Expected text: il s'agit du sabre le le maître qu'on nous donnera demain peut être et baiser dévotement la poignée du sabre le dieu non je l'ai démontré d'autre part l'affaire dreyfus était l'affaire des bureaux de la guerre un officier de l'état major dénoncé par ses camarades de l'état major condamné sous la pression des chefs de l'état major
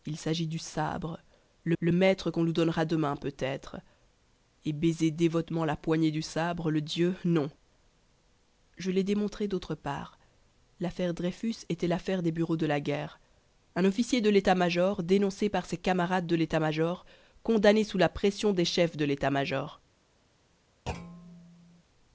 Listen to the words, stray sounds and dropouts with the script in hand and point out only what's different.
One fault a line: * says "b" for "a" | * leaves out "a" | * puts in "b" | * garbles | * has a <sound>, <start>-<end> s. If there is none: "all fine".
* has a thud, 20.9-21.8 s